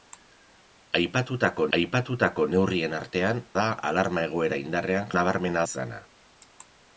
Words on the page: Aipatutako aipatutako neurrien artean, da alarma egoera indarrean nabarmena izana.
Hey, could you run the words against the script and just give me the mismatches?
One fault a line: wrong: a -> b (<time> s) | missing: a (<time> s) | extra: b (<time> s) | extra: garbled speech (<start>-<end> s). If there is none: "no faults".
no faults